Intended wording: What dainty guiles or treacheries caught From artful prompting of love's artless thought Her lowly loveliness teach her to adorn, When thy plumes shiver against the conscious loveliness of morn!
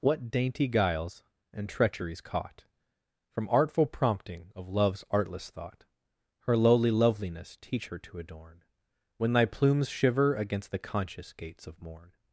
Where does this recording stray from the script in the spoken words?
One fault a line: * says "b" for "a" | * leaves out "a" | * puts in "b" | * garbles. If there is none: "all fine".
* says "and" for "or"
* says "gates" for "loveliness"